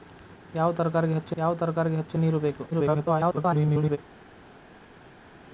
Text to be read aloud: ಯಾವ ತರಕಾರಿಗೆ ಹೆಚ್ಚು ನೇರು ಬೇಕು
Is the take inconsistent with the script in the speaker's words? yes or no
yes